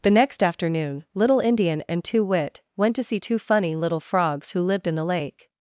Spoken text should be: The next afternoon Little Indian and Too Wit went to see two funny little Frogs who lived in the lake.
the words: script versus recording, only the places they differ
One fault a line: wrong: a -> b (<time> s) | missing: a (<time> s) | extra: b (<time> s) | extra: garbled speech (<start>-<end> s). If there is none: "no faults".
no faults